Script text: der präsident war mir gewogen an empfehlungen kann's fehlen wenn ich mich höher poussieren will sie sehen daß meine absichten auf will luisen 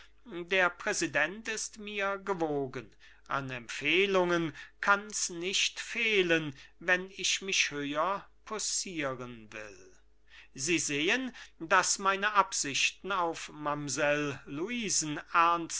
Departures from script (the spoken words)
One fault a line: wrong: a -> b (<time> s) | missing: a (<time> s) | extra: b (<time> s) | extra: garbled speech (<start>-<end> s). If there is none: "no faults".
wrong: war -> ist (1.5 s)
extra: nicht (5.3 s)
wrong: will -> mamsell (13.5 s)